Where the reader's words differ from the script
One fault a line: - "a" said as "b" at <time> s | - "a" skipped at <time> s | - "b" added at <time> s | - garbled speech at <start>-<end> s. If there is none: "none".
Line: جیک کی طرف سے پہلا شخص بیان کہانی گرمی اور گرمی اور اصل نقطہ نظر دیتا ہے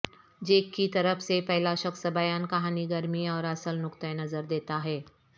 - "گرمی اور" skipped at 3.4 s